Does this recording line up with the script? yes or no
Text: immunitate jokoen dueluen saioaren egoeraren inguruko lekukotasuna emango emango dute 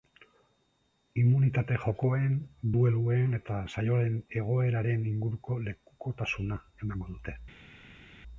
no